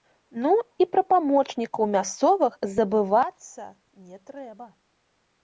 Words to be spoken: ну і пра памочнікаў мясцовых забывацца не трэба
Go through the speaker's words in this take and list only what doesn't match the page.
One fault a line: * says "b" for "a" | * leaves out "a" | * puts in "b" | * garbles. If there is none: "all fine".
all fine